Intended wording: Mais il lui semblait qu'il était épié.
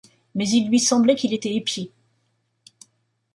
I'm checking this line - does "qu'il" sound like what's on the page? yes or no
yes